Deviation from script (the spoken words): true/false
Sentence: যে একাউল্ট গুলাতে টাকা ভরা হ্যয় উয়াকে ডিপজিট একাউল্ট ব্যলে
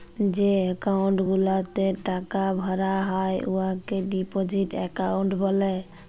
false